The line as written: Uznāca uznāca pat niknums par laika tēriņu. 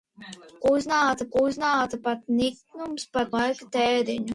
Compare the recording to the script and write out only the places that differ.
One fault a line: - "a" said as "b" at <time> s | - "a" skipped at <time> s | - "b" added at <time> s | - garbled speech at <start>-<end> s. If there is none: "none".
none